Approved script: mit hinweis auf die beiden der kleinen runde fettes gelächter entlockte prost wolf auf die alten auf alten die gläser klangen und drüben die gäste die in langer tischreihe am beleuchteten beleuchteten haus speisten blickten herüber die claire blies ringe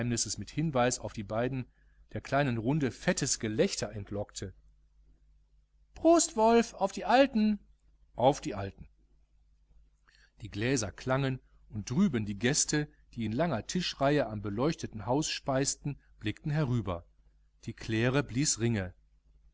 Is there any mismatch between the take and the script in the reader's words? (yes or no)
yes